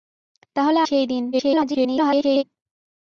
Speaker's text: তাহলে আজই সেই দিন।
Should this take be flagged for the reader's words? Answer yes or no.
yes